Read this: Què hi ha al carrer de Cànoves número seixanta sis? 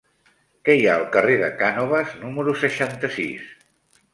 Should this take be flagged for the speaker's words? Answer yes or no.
no